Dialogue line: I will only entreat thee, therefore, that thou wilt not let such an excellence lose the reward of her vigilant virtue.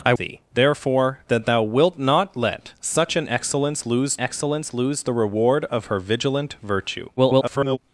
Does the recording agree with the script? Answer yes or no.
no